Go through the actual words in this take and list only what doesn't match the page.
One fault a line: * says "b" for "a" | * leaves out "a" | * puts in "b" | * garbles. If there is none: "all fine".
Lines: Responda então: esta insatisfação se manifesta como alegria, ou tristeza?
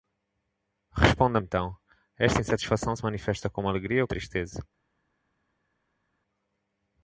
all fine